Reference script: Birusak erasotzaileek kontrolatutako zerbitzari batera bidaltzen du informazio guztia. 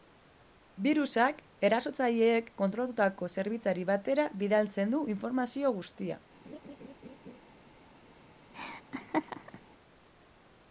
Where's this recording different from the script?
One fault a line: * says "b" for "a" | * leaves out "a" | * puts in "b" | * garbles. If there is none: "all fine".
all fine